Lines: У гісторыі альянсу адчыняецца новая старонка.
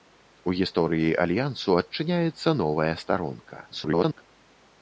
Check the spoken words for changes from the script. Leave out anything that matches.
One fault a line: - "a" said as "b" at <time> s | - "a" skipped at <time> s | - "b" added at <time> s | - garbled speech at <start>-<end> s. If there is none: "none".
- garbled speech at 3.7-4.2 s